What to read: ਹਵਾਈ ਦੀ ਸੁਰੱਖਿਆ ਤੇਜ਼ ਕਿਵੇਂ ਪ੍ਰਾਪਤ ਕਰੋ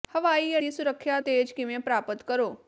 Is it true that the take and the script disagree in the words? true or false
false